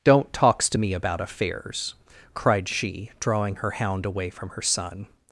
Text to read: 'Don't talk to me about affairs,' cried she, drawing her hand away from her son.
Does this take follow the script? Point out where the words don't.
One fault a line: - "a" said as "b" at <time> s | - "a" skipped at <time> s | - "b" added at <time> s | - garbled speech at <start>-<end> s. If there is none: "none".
- "talk" said as "talks" at 0.3 s
- "hand" said as "hound" at 3.7 s